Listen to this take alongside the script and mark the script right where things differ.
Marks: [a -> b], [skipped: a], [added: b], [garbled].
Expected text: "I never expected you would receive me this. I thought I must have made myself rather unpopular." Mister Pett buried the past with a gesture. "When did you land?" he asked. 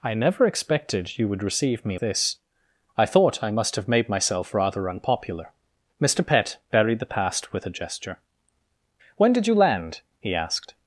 "I never expected you would receive me this. I thought I must have made myself rather unpopular." Mister Pett buried the past with a gesture. "When did you land?" he asked.